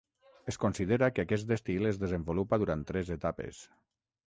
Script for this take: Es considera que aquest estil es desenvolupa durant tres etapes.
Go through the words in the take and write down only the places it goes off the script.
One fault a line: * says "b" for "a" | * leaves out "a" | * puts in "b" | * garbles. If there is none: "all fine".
all fine